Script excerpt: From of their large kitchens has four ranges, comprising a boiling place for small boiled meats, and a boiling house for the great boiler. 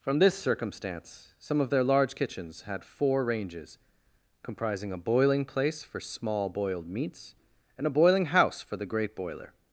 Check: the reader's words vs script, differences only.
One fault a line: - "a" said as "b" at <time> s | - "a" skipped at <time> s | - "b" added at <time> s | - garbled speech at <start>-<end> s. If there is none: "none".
- "this circumstance some" added at 0.2 s
- "has" said as "had" at 2.6 s